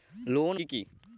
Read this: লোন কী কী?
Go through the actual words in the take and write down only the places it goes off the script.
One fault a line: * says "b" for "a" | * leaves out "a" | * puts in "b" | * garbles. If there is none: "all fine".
all fine